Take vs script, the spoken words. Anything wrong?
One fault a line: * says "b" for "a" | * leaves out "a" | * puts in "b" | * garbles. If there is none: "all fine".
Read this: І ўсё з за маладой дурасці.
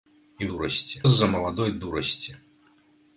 * says "дурасці" for "ўсё"